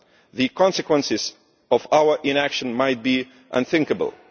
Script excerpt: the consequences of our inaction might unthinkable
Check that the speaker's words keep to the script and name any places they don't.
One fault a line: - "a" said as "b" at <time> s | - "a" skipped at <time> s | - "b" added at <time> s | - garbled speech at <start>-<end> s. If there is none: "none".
- "be" added at 3.0 s